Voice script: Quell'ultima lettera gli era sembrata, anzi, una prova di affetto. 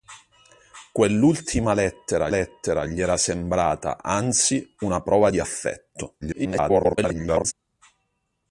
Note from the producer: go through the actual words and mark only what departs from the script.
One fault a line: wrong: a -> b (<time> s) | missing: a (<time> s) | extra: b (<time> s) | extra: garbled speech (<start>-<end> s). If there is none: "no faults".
extra: lettera (2.3 s)
extra: garbled speech (6.2-7.5 s)